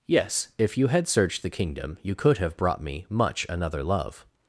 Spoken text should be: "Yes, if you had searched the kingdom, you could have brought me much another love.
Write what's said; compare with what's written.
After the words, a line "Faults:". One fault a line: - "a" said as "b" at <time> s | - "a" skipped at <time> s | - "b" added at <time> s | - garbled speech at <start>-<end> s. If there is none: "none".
"Yes, if you had searched the kingdom, you could have brought me much another love.
Faults:
none